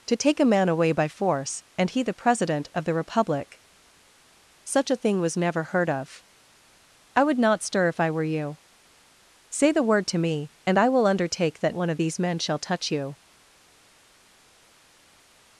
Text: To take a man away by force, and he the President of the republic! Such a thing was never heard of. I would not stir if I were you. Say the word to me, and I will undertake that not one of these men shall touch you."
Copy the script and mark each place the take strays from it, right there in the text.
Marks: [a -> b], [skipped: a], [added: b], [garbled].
To take a man away by force, and he the President of the republic! Such a thing was never heard of. I would not stir if I were you. Say the word to me, and I will undertake that [skipped: not] one of these men shall touch you."